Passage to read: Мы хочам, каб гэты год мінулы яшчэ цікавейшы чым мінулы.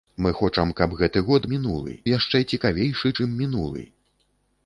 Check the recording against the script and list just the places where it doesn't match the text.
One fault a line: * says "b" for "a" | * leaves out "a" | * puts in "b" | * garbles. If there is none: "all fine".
all fine